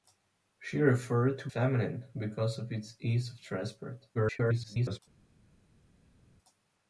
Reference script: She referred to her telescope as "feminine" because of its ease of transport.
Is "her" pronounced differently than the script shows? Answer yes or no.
yes